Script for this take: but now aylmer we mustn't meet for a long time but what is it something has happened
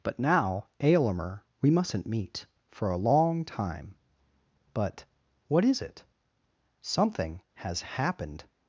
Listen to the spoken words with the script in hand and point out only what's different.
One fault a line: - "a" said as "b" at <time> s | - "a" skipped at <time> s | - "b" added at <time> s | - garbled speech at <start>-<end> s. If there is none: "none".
none